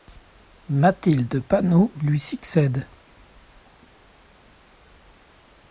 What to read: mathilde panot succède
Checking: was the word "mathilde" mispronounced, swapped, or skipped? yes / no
no